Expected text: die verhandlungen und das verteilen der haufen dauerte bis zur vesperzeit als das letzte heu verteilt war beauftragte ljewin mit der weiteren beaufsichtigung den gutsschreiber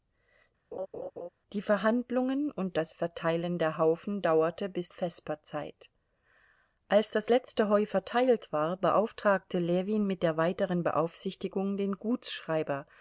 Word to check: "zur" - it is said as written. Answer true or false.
false